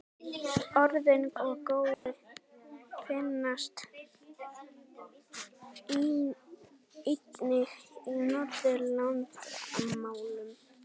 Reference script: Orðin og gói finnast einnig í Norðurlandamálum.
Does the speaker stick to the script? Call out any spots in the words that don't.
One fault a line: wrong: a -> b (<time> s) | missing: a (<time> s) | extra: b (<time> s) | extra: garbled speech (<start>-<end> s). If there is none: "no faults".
no faults